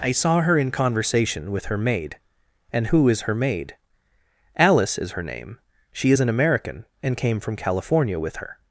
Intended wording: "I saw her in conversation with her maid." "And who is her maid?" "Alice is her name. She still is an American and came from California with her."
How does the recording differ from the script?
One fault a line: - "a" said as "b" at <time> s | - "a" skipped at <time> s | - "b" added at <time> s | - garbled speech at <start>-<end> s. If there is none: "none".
- "still" skipped at 6.1 s